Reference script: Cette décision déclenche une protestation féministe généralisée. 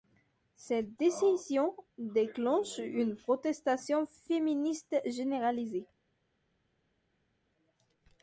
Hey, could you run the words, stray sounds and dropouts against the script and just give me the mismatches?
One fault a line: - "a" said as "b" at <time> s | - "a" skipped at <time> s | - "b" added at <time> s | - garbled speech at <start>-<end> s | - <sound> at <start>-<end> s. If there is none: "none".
none